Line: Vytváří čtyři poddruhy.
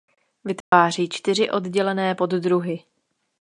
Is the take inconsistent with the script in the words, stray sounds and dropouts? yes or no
yes